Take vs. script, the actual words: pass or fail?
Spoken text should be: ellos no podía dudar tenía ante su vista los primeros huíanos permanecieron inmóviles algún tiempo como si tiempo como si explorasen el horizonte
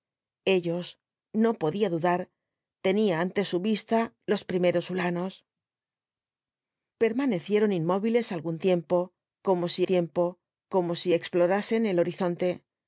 pass